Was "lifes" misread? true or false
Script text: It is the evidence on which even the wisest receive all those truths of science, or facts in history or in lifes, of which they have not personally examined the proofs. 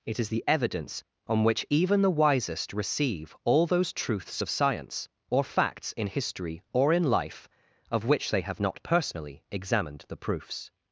true